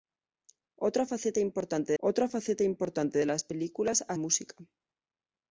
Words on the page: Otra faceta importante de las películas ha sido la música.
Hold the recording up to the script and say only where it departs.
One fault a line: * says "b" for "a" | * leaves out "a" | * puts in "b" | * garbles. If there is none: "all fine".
* puts in "otra faceta importante"
* leaves out "sido la"